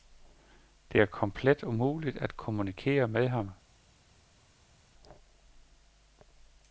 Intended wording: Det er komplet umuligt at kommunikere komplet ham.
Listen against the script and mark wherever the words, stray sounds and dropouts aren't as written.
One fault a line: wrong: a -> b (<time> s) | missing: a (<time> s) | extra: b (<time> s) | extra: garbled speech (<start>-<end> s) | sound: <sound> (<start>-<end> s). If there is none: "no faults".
wrong: komplet -> med (3.1 s)